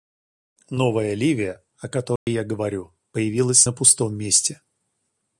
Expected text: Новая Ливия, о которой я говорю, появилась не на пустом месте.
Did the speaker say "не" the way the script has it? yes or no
no